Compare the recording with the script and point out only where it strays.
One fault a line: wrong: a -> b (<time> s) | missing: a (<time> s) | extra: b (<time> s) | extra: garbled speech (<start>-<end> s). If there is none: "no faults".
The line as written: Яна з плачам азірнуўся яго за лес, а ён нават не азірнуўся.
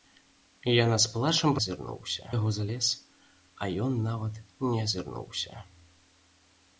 no faults